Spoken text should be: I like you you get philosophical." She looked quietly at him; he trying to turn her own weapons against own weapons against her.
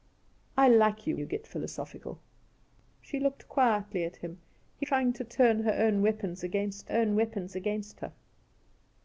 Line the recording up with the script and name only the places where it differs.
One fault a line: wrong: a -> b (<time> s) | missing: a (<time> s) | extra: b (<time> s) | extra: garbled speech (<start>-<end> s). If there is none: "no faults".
no faults